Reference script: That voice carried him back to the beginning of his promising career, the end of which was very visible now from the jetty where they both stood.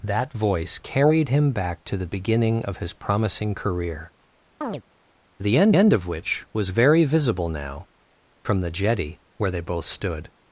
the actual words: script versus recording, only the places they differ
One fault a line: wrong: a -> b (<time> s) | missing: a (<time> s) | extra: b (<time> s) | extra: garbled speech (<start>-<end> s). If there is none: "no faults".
extra: end (5.7 s)